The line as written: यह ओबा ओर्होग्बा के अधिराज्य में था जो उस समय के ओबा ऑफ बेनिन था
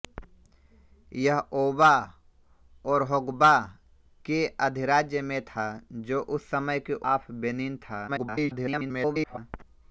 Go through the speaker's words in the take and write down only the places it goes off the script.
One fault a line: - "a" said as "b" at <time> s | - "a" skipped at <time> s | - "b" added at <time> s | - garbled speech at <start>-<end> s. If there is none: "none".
- "ओबा" skipped at 6.9 s
- garbled speech at 8.1-9.4 s